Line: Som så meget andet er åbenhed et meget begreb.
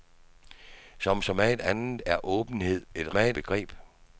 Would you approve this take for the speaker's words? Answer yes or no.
yes